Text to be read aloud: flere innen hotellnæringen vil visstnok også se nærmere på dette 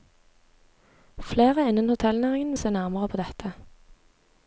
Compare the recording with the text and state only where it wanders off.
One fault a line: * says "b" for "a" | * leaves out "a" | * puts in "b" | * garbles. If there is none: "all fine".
* leaves out "vil visstnok også"